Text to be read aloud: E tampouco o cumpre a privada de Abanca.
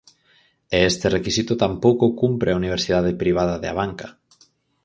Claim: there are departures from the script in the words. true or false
true